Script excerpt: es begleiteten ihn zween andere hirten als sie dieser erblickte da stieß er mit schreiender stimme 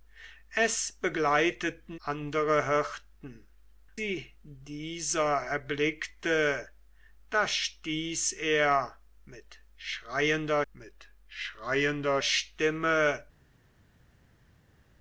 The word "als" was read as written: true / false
false